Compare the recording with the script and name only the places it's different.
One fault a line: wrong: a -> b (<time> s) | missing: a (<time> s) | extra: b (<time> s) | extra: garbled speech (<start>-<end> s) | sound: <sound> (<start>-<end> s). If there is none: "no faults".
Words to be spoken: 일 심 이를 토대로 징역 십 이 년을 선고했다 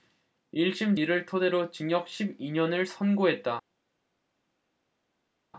no faults